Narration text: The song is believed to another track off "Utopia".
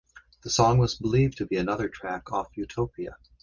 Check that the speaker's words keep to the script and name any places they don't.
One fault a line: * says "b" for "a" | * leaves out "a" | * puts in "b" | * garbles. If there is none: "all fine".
* says "was" for "is"
* puts in "be"